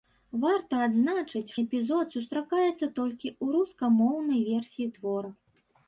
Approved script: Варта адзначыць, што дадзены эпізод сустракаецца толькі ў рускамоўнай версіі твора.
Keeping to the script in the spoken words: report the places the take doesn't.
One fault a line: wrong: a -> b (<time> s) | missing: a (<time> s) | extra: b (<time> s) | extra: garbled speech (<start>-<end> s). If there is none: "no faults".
missing: што дадзены (1.5 s)